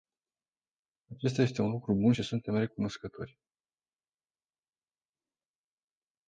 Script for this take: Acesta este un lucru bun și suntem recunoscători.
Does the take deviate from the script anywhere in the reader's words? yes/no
no